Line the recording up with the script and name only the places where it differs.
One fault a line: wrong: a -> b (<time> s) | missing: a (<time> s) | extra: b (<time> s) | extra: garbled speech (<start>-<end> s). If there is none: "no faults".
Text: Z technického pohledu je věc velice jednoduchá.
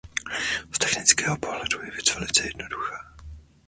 no faults